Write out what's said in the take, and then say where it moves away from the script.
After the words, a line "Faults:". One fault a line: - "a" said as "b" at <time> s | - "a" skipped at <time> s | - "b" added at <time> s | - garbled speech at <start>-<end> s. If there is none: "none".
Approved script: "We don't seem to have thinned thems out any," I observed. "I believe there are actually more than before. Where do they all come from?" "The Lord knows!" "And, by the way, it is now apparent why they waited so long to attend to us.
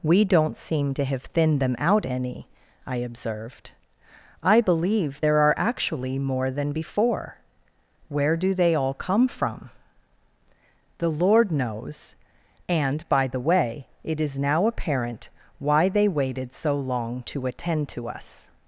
"We don't seem to have thinned them out any," I observed. "I believe there are actually more than before. Where do they all come from?" "The Lord knows!" "And, by the way, it is now apparent why they waited so long to attend to us.
Faults:
- "thems" said as "them" at 1.6 s